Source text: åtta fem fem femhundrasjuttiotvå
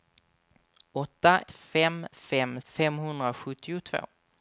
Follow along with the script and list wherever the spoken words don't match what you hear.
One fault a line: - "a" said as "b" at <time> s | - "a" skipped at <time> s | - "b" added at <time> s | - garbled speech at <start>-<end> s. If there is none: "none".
none